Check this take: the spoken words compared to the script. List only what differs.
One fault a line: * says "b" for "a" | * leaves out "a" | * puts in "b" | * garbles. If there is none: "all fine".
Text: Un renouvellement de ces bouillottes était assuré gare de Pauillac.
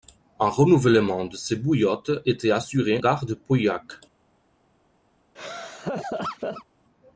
all fine